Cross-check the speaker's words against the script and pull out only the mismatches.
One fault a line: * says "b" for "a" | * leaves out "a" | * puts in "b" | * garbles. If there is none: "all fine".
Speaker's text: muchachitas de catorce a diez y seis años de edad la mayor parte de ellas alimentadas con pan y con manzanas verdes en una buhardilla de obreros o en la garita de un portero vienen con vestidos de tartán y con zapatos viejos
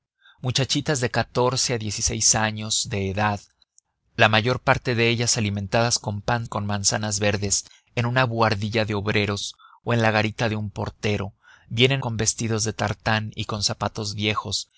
all fine